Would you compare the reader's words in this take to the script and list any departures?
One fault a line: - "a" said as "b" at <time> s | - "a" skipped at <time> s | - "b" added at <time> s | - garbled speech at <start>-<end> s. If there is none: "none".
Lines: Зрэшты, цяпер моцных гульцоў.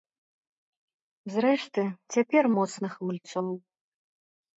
none